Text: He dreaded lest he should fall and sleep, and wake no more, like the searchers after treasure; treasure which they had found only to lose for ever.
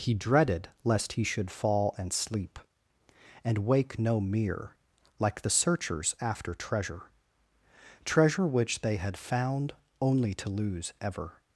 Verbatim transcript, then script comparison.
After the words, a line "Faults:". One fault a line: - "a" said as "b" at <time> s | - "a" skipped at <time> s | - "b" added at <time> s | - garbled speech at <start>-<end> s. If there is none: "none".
He dreaded lest he should fall and sleep, and wake no mere, like the searchers after treasure; treasure which they had found only to lose ever.
Faults:
- "more" said as "mere" at 4.2 s
- "for" skipped at 10.9 s